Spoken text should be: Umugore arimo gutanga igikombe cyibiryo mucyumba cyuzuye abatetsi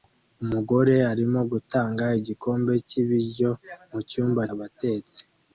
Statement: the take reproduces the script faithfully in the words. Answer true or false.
false